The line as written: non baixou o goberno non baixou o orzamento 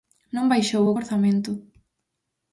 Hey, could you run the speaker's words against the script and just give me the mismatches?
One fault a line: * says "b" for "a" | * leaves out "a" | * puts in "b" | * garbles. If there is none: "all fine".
* leaves out "goberno non baixou"